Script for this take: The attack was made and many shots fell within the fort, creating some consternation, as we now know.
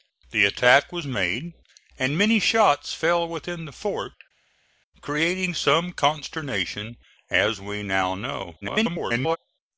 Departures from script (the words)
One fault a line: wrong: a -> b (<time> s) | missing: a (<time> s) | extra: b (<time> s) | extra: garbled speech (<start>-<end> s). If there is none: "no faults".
extra: garbled speech (8.6-9.4 s)